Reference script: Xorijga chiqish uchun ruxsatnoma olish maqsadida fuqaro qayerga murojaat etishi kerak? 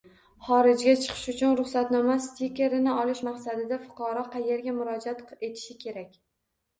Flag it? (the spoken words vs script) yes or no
yes